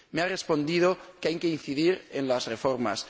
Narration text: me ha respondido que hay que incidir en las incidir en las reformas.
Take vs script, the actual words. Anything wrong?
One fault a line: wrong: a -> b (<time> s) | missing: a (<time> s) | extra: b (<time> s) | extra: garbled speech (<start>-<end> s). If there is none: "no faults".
missing: incidir en las (2.5 s)